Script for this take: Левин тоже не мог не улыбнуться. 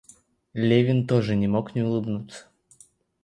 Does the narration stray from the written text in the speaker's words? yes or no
no